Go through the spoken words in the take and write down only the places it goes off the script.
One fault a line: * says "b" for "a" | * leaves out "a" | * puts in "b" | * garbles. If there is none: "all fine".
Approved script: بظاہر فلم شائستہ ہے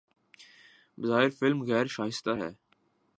* puts in "غیر"